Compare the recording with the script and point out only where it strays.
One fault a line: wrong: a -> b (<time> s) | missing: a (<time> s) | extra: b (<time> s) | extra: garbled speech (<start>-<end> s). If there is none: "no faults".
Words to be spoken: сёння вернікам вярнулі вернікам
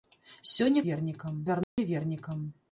no faults